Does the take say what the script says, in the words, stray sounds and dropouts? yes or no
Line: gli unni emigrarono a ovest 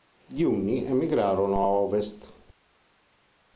yes